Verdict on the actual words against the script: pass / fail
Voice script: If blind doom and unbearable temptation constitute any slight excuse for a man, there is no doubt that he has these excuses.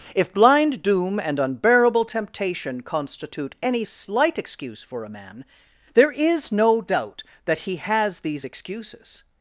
pass